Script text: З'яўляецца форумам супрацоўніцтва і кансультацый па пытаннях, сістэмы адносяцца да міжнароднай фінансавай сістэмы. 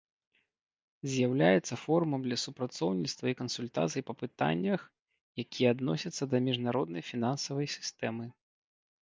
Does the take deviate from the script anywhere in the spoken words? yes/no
yes